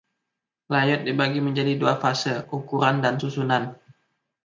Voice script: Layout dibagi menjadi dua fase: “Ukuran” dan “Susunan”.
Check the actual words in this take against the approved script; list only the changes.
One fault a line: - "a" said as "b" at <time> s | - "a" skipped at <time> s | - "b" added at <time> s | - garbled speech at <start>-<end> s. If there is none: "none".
none